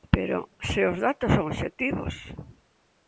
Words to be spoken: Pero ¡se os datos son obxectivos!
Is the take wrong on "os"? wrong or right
right